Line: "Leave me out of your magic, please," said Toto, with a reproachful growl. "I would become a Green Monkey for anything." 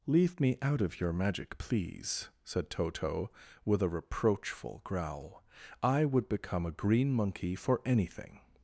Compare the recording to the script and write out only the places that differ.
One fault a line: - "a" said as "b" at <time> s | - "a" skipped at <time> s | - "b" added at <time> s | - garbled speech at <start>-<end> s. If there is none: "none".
none